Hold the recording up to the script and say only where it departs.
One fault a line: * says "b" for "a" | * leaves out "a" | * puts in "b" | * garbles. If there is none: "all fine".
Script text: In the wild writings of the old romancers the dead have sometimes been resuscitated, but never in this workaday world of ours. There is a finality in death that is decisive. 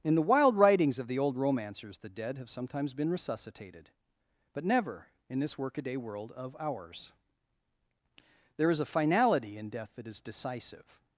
all fine